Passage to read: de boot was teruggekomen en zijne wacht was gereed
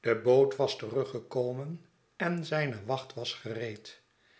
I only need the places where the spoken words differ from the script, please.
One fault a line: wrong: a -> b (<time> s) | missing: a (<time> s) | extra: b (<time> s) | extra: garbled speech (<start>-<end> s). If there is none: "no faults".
no faults